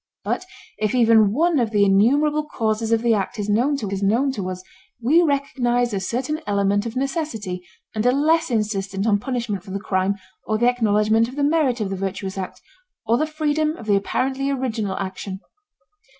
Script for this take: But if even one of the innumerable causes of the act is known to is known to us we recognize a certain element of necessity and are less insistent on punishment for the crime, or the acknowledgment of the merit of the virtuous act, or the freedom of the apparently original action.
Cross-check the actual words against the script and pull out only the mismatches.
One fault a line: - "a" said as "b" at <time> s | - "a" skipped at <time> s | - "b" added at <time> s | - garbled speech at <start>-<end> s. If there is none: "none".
none